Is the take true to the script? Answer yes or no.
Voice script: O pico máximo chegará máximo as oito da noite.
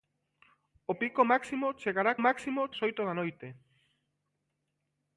yes